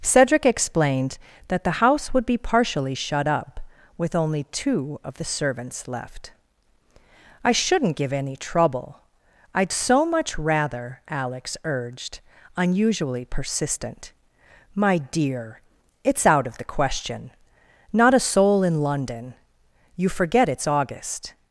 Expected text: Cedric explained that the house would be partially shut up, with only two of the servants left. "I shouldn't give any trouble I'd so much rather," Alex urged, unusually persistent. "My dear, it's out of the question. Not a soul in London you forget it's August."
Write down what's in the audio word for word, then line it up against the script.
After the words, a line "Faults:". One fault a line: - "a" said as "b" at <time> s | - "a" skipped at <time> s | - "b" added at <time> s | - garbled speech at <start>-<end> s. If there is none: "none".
Cedric explained that the house would be partially shut up, with only two of the servants left. "I shouldn't give any trouble I'd so much rather," Alex urged, unusually persistent. "My dear, it's out of the question. Not a soul in London you forget it's August."
Faults:
none